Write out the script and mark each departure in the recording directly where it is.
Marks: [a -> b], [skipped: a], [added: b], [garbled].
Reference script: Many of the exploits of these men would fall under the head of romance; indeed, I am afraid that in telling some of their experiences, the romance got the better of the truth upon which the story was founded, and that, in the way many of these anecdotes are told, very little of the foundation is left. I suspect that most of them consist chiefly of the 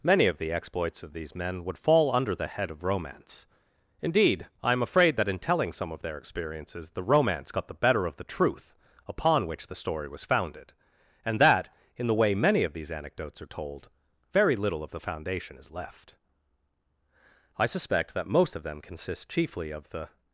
Many of the exploits of these men would fall under the head of romance; indeed, I am afraid that in telling some of their experiences, the romance got the better of the truth upon which the story was founded, and that, in the way many of these anecdotes are told, very little of the foundation is left. I suspect that most of them consist chiefly of the